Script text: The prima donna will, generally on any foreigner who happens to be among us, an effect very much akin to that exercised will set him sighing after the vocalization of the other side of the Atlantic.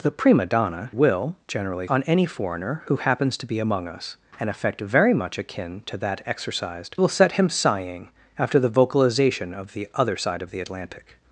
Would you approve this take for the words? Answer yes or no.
yes